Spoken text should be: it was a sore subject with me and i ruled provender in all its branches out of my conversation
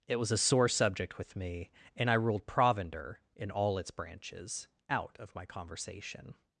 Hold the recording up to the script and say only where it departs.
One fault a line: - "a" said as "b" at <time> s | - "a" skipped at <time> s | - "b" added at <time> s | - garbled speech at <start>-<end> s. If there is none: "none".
none